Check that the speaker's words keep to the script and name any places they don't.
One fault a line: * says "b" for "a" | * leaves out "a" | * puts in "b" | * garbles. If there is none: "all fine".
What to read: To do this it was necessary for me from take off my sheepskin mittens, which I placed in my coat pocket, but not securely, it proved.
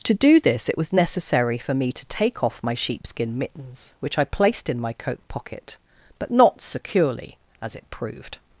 * says "to" for "from"
* puts in "as"